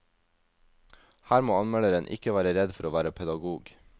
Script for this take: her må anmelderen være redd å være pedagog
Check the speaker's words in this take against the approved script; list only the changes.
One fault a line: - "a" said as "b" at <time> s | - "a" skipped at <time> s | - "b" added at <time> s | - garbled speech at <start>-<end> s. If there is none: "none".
- "ikke" added at 2.1 s
- "for" added at 2.8 s